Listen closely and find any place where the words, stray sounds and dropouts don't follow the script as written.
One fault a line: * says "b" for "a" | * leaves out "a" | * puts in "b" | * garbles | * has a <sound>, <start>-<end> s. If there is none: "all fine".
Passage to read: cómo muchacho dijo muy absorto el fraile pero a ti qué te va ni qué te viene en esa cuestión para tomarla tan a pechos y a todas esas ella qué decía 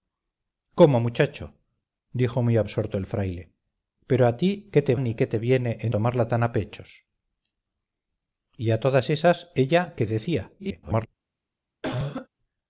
* leaves out "va"
* leaves out "esa cuestión para"
* garbles
* has a cough, 11.8-12.3 s